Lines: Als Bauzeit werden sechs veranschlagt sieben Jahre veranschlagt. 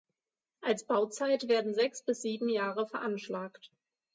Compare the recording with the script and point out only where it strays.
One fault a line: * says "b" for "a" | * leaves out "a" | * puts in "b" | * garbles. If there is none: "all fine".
* says "bis" for "veranschlagt"